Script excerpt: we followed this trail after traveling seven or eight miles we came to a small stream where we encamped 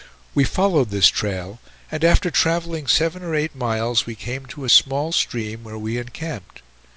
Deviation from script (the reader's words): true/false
true